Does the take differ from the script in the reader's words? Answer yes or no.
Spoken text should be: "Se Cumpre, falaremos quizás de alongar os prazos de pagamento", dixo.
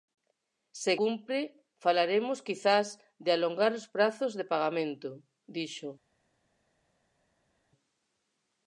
no